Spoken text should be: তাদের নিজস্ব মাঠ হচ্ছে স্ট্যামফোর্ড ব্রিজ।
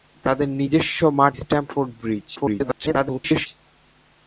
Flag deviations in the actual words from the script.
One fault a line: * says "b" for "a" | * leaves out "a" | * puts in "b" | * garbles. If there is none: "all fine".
* leaves out "হচ্ছে"
* garbles